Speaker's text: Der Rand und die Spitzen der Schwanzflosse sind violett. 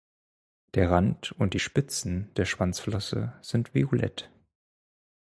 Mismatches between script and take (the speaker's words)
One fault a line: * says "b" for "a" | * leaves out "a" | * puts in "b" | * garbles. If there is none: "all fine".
all fine